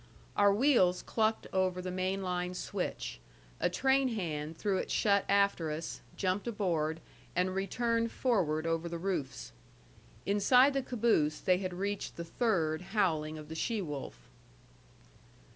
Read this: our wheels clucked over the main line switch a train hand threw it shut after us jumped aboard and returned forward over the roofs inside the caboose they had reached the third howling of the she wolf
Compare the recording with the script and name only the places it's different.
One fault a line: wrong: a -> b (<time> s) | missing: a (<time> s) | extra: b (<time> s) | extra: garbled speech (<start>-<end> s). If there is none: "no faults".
no faults